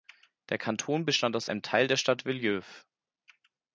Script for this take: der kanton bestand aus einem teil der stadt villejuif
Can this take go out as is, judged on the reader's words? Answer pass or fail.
pass